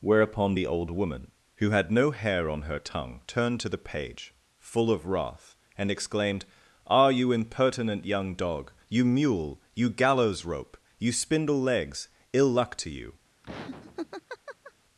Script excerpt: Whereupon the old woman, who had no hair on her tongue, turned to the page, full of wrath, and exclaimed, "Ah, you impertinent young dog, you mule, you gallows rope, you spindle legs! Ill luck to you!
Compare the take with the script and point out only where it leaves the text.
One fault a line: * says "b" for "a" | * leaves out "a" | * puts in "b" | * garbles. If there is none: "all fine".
all fine